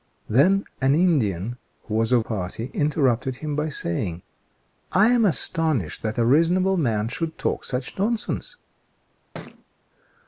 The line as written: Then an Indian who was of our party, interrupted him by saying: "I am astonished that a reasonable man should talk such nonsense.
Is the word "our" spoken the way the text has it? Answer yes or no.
no